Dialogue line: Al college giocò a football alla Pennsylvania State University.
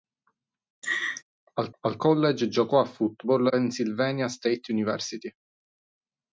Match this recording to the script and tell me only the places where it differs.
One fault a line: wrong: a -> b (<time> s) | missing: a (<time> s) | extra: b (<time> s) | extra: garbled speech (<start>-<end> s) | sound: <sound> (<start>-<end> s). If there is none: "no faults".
sound: laugh (0.8-1.2 s)
extra: al (1.8 s)
missing: alla (3.5 s)